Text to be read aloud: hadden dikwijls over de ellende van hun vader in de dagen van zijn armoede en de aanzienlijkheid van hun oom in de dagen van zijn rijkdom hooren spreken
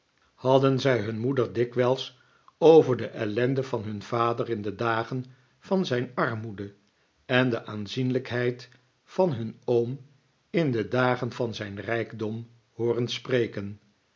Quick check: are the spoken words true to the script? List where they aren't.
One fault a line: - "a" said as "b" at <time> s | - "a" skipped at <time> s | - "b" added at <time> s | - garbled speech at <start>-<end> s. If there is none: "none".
- "zij hun moeder" added at 0.8 s